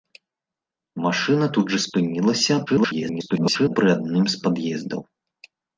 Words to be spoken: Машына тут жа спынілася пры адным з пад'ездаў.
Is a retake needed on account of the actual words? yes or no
yes